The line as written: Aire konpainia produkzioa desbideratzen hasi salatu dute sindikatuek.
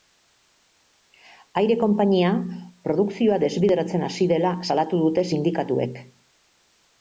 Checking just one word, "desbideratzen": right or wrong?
right